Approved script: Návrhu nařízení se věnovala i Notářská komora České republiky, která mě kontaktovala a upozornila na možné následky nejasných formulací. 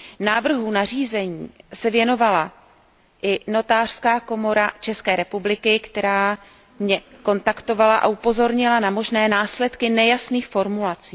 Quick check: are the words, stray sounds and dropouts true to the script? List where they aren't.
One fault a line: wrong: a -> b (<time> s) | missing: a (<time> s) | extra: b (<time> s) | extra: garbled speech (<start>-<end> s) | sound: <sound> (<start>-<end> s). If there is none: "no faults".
no faults